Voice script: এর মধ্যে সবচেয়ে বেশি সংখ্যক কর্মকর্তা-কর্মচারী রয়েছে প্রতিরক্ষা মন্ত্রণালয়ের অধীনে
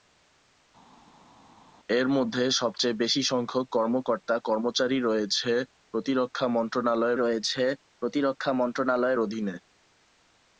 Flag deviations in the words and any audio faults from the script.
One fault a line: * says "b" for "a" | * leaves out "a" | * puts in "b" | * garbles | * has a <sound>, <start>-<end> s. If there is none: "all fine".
* puts in "রয়েছে প্রতিরক্ষা মন্ত্রণালয়ের"